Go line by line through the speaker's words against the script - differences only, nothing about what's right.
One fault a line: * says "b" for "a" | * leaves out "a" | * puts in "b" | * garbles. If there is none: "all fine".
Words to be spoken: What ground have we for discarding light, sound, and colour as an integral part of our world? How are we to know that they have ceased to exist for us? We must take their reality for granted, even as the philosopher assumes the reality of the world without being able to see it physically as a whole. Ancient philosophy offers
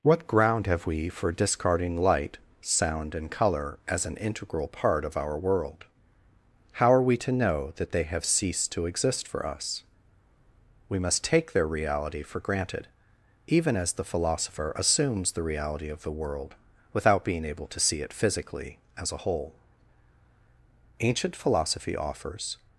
all fine